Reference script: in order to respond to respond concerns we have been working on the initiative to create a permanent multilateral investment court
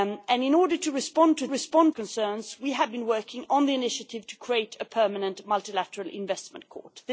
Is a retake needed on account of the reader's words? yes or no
no